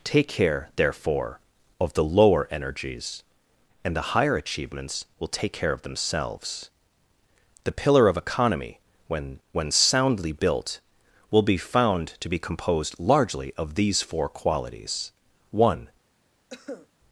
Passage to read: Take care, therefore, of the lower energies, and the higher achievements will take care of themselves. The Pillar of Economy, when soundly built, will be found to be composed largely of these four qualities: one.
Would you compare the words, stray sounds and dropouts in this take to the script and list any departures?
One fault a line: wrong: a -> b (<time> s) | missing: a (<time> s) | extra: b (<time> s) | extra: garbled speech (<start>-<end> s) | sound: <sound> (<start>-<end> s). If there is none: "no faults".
extra: when (9.5 s)
sound: cough (16.5-16.9 s)